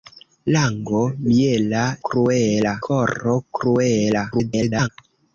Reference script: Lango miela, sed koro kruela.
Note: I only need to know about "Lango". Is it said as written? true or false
true